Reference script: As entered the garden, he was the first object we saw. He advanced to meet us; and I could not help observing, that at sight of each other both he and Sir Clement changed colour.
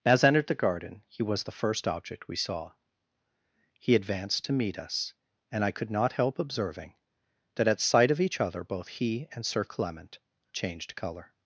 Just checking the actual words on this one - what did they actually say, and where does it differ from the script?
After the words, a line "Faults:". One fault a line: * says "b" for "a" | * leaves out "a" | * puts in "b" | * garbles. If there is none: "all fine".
As entered the garden, he was the first object we saw. He advanced to meet us; and I could not help observing, that at sight of each other both he and Sir Clement changed colour.
Faults:
all fine